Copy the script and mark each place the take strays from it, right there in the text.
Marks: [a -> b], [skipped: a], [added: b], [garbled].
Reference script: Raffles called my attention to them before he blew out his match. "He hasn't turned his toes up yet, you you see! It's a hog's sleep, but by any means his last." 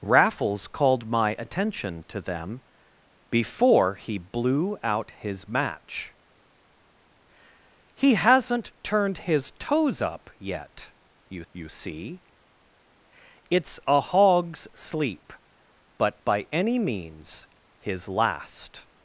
Raffles called my attention to them before he blew out his match. "He hasn't turned his toes up yet, you you see! It's a hog's sleep, but by any means his last."